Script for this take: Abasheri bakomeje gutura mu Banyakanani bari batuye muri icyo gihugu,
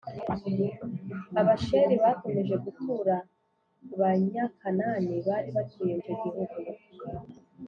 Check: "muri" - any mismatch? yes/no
yes